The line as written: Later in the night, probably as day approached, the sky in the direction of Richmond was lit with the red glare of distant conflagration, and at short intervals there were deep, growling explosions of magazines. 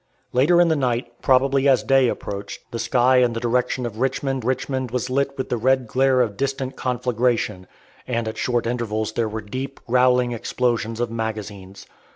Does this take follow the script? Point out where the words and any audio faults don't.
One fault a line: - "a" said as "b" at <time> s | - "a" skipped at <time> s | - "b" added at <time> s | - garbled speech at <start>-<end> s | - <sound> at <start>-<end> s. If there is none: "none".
- "Richmond" added at 4.4 s